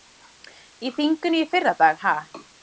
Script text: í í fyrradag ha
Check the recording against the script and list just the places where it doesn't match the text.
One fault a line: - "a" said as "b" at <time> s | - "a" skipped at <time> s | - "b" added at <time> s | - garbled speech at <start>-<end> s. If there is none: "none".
- "þinginu" added at 0.9 s